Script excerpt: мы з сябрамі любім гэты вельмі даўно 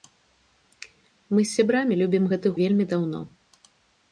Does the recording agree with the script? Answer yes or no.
yes